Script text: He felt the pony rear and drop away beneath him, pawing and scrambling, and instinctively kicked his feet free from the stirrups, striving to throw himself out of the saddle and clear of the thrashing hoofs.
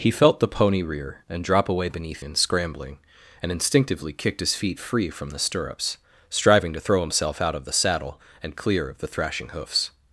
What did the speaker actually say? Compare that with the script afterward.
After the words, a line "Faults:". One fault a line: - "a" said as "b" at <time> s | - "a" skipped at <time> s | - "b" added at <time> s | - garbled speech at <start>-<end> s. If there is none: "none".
He felt the pony rear and drop away beneath and scrambling, and instinctively kicked his feet free from the stirrups, striving to throw himself out of the saddle and clear of the thrashing hoofs.
Faults:
- "him pawing" skipped at 2.2 s